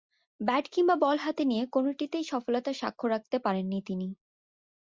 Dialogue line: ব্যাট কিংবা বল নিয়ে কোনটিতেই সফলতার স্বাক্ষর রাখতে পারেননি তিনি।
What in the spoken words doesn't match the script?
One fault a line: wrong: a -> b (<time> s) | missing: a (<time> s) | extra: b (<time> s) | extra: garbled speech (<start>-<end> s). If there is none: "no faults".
extra: হাতে (1.2 s)